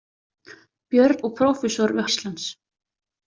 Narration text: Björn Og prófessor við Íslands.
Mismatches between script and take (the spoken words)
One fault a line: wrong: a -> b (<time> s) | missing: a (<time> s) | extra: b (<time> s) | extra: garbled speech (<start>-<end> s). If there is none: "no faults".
no faults